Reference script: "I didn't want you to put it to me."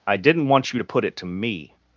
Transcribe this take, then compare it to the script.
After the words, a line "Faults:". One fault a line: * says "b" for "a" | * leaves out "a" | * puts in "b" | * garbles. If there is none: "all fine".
"I didn't want you to put it to me."
Faults:
all fine